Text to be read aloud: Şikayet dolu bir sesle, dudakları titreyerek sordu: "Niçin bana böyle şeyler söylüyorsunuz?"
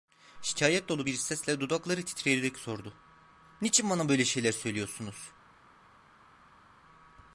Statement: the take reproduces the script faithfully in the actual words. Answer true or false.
true